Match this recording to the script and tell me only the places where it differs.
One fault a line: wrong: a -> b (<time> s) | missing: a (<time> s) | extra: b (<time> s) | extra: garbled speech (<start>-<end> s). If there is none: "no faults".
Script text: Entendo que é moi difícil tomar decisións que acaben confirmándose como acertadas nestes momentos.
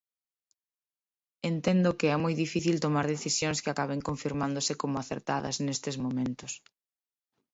no faults